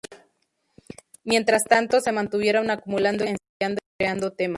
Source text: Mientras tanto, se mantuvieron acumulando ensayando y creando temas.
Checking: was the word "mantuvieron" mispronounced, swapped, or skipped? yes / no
no